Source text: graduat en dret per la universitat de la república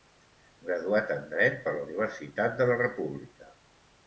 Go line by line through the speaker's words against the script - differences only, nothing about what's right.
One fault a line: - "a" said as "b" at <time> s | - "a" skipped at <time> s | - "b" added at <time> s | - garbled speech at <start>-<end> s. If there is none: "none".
none